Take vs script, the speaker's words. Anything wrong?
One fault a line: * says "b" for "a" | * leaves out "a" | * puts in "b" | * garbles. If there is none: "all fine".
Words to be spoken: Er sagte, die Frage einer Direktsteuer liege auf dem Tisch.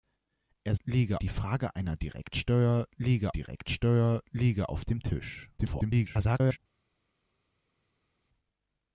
* says "liege" for "sagte"
* puts in "Direktsteuer liege"
* garbles